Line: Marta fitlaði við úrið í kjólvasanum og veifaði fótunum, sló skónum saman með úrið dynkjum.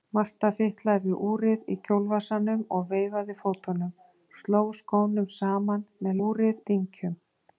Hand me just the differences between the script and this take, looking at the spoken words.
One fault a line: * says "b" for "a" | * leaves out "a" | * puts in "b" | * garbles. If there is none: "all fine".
all fine